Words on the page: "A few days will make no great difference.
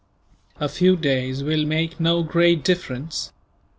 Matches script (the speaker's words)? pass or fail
pass